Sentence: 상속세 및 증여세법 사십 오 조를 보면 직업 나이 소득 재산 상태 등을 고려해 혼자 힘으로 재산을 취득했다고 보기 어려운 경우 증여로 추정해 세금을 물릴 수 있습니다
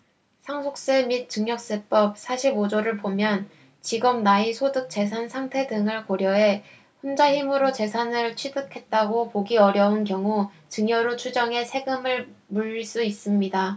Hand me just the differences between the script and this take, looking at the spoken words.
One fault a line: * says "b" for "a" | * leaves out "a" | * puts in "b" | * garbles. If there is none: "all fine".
all fine